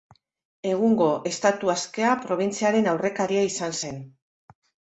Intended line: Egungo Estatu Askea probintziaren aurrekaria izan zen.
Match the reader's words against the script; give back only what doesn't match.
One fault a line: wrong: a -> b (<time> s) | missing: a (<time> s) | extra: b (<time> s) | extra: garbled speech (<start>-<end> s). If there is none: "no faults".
no faults